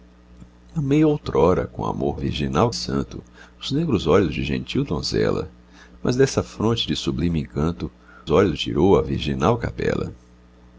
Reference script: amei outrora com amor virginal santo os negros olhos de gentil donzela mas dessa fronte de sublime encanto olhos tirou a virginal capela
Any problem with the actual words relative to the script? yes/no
no